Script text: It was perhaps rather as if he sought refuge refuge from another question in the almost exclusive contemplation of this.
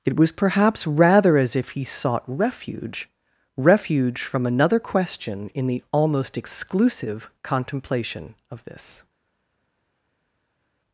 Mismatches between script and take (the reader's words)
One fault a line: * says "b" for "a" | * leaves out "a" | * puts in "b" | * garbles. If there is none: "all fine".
all fine